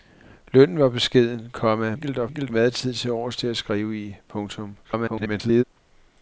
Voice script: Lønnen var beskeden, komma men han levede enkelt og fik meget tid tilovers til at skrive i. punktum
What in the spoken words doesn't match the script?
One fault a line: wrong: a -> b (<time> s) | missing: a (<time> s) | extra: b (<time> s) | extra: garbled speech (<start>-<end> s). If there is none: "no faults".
missing: men han levede (1.9 s)
wrong: fik -> enkelt (2.3 s)
extra: garbled speech (4.8-5.6 s)